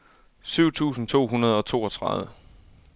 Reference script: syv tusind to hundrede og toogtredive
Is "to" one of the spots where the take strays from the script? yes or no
no